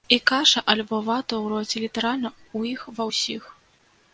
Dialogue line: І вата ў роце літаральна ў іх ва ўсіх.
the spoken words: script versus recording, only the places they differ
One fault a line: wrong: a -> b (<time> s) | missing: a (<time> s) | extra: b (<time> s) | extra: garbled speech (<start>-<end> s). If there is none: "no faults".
extra: каша альбо (0.3 s)